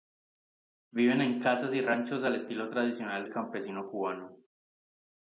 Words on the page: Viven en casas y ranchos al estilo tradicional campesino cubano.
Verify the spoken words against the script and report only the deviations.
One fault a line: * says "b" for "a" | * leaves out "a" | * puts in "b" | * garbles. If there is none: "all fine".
all fine